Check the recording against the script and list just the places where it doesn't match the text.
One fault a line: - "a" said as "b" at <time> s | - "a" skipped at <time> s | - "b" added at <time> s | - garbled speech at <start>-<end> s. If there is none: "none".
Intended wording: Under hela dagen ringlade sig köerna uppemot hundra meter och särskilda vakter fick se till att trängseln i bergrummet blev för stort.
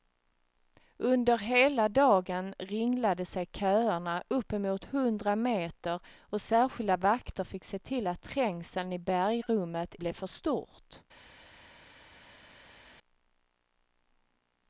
none